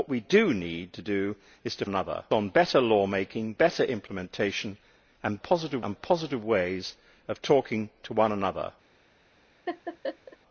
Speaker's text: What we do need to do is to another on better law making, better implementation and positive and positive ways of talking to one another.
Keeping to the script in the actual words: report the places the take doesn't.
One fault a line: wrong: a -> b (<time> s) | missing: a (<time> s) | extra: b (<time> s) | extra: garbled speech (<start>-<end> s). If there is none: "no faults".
no faults